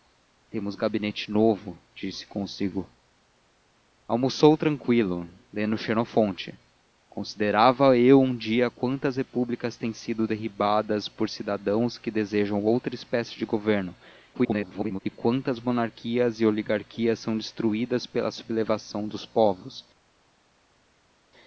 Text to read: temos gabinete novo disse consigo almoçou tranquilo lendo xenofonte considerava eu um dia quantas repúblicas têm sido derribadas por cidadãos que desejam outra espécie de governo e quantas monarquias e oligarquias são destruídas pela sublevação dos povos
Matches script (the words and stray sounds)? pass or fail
fail